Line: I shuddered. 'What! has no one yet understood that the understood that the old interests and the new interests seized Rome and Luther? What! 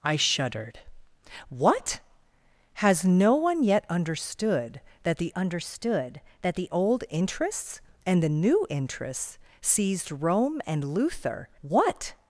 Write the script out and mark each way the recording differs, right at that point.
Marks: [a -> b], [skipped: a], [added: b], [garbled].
I shuddered. 'What! has no one yet understood that the understood that the old interests and the new interests seized Rome and Luther? What!